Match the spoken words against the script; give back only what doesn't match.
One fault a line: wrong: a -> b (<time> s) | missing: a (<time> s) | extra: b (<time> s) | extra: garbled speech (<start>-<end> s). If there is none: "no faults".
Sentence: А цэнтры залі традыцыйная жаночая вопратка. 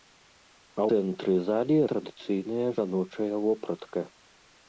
no faults